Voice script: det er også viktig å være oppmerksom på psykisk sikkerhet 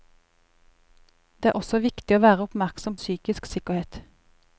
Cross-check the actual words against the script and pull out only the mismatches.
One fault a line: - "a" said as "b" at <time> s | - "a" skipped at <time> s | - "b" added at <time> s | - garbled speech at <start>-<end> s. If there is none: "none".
- "på" skipped at 3.0 s